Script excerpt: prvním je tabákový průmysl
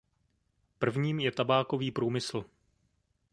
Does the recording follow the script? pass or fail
pass